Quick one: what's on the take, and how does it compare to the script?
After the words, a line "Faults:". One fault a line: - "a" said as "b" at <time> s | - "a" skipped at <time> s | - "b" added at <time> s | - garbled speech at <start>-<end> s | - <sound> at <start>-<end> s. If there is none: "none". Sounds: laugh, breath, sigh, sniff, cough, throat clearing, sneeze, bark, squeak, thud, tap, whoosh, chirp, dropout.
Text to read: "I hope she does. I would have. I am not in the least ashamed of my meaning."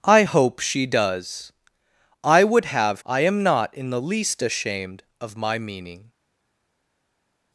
"I hope she does. I would have. I am not in the least ashamed of my meaning."
Faults:
none